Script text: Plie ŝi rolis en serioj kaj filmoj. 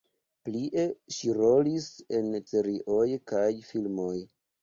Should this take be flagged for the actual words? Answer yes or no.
no